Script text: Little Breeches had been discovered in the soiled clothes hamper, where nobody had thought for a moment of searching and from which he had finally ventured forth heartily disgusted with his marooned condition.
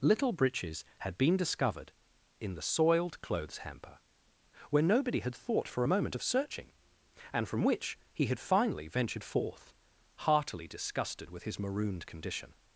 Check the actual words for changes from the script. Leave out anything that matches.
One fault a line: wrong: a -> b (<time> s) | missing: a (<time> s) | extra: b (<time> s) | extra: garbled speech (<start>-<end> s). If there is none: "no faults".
no faults